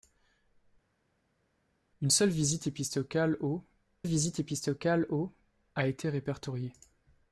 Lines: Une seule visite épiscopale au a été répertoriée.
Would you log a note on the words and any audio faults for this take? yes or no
yes